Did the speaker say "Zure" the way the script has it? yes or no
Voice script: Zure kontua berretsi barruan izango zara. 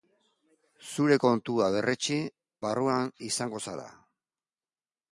yes